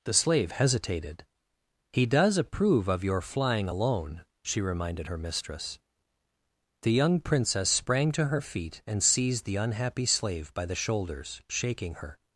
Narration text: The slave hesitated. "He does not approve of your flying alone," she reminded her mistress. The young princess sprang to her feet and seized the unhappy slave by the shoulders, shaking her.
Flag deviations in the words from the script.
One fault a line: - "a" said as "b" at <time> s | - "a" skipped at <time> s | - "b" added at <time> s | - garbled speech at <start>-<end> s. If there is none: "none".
- "not" skipped at 2.4 s